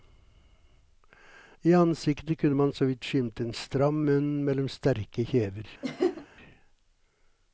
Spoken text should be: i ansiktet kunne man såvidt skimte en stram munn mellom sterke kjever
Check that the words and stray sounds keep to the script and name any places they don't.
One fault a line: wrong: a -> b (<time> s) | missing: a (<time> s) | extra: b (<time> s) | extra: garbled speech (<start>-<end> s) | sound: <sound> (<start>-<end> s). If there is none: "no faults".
sound: laugh (5.8-6.3 s)